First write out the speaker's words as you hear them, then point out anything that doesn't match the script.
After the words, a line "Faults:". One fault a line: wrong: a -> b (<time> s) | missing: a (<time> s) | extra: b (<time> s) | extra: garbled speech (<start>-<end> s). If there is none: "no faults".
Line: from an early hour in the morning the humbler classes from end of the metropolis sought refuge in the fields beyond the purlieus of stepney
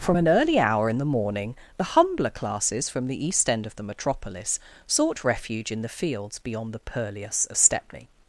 from an early hour in the morning the humbler classes from the east end of the metropolis sought refuge in the fields beyond the purlieus of stepney
Faults:
extra: the east (3.1 s)